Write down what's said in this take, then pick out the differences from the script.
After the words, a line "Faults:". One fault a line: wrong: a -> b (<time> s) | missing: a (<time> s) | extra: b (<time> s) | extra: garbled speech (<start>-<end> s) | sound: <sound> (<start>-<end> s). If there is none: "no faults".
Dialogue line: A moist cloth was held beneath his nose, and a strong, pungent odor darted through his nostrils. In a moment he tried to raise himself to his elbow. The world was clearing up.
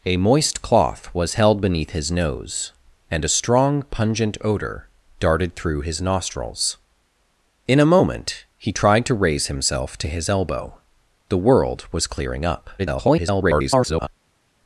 A moist cloth was held beneath his nose, and a strong, pungent odor darted through his nostrils. In a moment he tried to raise himself to his elbow. The world was clearing up. [garbled]
Faults:
extra: garbled speech (12.8-14.1 s)